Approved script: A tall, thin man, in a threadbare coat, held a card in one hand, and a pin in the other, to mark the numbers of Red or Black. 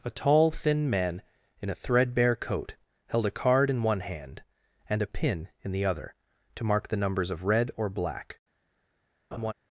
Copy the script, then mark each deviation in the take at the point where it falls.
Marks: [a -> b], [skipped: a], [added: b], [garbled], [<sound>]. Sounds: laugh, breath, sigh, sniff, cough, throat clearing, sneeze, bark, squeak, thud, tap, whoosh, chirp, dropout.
A tall, thin man, in a threadbare coat, held a card in one hand, and a pin in the other, to mark the numbers of Red or Black. [laugh]